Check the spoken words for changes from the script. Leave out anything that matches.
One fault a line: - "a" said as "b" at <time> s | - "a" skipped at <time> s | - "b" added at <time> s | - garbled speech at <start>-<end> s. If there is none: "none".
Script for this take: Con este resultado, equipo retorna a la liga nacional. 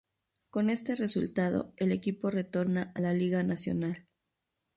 - "el" added at 1.8 s